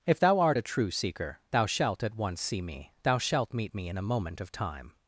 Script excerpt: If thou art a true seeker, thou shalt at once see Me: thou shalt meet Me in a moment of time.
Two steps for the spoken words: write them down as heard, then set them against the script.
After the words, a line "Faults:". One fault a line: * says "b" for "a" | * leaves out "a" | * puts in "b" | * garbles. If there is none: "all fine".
If thou art a true seeker, thou shalt at once see Me: thou shalt meet Me in a moment of time.
Faults:
all fine